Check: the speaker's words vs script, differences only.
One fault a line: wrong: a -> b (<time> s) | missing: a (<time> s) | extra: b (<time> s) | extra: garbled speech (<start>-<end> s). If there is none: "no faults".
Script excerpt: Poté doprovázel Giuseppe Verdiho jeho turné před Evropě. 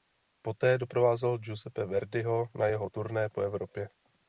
extra: na (2.6 s)
wrong: před -> po (3.3 s)